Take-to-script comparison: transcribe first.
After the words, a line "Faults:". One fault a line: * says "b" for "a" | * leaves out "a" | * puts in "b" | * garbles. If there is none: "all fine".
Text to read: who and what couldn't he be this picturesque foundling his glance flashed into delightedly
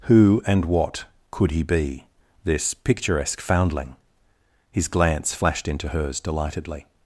who and what could he be this picturesque foundling his glance flashed into hers delightedly
Faults:
* says "could" for "couldn't"
* puts in "hers"